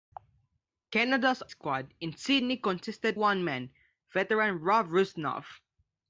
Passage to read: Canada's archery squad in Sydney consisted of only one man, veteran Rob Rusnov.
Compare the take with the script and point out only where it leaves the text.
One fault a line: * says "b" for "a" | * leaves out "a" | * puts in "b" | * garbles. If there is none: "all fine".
* leaves out "archery"
* leaves out "of only"